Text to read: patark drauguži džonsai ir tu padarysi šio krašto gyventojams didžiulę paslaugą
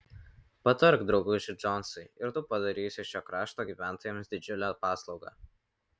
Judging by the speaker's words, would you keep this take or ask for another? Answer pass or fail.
pass